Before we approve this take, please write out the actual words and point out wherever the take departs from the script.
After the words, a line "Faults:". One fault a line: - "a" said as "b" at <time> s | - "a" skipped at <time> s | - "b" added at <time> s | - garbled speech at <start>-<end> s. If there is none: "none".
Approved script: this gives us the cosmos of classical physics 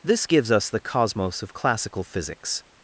this gives us the cosmos of classical physics
Faults:
none